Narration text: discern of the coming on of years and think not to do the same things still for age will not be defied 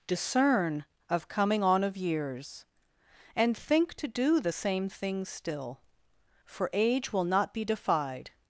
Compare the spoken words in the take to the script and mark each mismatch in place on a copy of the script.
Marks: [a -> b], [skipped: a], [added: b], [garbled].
discern of [skipped: the] coming on of years and think [skipped: not] to do the same things still for age will not be defied